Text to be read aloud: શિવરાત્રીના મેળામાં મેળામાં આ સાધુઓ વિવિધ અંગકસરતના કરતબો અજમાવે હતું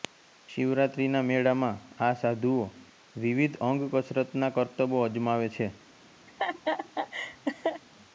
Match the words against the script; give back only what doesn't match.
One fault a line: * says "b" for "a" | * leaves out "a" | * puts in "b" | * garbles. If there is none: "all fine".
* leaves out "મેળામાં"
* says "છે" for "હતું"